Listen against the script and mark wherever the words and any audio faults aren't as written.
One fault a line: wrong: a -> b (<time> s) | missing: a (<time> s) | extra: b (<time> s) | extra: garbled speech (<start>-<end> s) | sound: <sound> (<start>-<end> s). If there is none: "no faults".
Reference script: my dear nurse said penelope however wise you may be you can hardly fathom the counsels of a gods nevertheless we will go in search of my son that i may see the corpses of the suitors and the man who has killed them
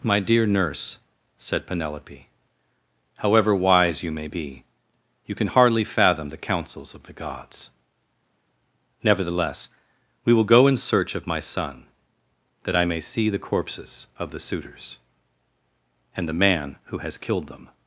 wrong: a -> the (7.0 s)